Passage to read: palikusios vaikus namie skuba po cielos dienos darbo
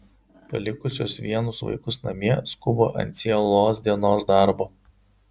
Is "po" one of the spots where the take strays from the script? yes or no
yes